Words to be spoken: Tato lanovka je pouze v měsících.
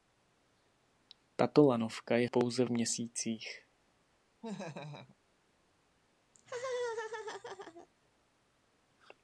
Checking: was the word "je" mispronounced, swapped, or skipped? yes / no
no